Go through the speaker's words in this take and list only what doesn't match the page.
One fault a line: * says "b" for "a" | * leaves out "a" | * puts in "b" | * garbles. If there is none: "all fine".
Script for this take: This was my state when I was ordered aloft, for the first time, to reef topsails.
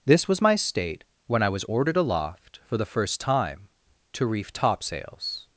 all fine